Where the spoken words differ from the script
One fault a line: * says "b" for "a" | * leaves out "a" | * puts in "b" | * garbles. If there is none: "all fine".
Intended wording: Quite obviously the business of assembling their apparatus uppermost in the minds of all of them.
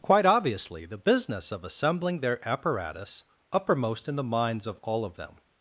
all fine